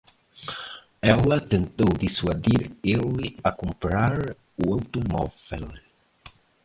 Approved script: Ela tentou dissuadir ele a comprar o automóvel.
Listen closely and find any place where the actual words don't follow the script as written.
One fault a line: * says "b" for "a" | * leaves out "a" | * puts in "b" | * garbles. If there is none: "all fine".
all fine